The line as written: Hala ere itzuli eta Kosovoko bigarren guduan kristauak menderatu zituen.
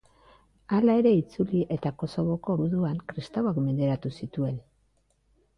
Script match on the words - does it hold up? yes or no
no